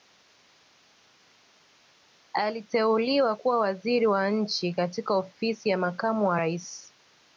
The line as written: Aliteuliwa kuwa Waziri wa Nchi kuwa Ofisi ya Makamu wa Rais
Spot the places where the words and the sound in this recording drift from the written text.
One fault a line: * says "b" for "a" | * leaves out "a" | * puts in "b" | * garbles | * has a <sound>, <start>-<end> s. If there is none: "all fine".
* says "katika" for "kuwa"